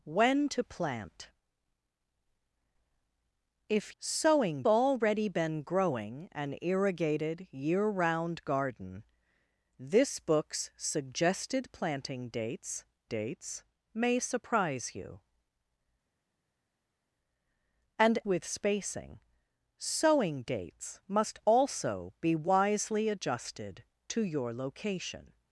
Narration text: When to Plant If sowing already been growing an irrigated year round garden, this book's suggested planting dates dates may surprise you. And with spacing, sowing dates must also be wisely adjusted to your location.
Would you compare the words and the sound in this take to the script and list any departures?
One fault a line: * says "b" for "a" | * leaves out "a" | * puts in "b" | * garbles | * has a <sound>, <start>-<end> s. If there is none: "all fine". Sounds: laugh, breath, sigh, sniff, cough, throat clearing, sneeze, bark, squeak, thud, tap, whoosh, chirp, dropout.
all fine